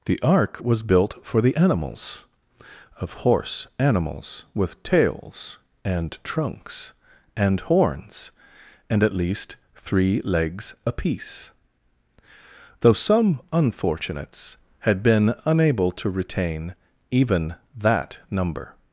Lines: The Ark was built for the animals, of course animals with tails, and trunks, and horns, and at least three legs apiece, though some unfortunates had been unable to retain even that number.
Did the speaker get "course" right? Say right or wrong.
wrong